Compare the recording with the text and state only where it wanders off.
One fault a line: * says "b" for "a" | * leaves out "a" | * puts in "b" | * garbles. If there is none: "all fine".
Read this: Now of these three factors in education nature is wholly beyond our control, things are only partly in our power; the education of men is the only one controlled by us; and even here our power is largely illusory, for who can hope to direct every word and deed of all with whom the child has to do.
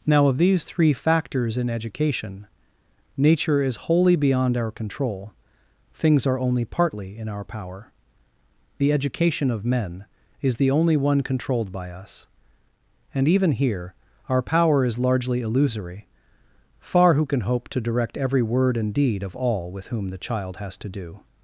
* says "far" for "for"